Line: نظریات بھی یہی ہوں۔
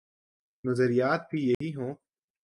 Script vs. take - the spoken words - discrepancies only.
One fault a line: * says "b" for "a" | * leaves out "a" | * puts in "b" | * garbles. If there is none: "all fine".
all fine